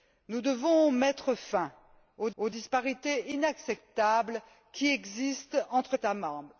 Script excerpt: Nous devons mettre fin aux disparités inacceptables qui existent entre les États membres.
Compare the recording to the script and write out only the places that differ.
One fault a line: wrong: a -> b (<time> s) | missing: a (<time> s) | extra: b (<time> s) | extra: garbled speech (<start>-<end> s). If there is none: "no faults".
extra: aux (2.4 s)
missing: les (6.0 s)